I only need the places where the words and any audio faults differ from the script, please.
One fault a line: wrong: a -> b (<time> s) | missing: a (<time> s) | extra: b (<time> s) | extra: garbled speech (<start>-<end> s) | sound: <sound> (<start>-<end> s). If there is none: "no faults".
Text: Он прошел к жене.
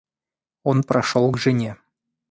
no faults